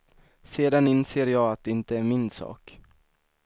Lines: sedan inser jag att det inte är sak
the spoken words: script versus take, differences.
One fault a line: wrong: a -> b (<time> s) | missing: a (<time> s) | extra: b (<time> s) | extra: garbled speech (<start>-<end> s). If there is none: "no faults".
extra: min (2.0 s)